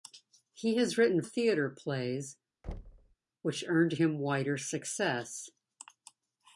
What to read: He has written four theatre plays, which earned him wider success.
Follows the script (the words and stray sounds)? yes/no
no